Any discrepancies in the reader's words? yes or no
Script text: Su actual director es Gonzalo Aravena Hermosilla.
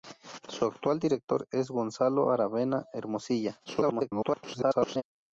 yes